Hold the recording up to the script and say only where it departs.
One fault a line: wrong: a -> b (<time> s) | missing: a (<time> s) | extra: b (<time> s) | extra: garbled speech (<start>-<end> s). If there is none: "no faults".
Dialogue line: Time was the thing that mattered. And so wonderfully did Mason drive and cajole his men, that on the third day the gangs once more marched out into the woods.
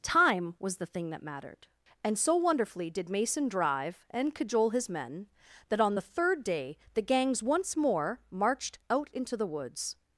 no faults